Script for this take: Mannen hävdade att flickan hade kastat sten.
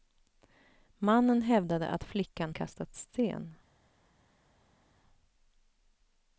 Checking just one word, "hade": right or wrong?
wrong